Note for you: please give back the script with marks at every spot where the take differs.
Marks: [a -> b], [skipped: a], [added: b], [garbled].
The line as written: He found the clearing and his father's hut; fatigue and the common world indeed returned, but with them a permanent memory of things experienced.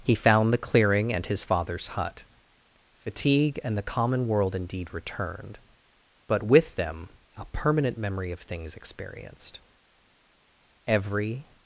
He found the clearing and his father's hut; fatigue and the common world indeed returned, but with them a permanent memory of things experienced. [added: Every]